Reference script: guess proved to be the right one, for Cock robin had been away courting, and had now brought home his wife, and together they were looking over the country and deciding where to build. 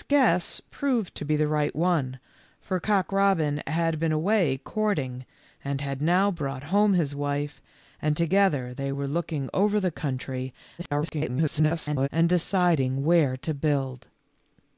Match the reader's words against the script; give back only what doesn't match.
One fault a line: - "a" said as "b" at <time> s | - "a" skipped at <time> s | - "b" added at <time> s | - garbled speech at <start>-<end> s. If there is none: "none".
- garbled speech at 10.8-12.1 s